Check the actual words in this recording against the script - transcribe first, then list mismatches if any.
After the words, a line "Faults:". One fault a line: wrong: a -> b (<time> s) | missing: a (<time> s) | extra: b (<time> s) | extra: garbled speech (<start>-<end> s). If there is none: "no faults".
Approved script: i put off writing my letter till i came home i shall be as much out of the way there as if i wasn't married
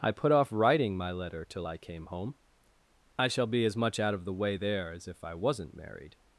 i put off writing my letter till i came home i shall be as much out of the way there as if i wasn't married
Faults:
no faults